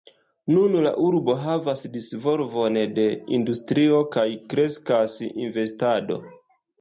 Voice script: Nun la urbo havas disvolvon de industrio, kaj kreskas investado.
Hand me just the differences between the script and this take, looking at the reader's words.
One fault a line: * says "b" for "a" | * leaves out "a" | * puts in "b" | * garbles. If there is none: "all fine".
all fine